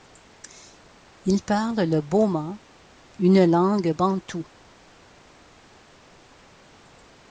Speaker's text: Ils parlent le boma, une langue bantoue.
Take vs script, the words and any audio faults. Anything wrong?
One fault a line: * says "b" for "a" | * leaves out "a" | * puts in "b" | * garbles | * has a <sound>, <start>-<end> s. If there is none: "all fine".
all fine